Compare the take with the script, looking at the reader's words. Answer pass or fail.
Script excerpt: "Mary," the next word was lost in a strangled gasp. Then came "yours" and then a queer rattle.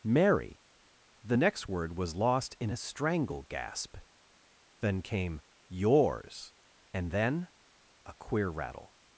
fail